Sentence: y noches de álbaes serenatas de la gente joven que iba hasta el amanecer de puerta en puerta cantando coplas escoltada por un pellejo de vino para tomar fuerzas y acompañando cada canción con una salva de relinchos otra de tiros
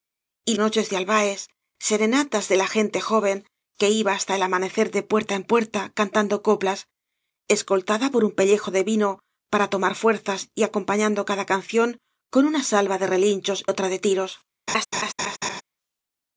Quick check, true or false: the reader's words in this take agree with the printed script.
true